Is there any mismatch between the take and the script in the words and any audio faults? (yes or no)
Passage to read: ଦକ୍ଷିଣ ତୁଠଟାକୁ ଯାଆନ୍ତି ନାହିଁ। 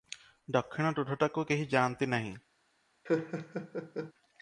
yes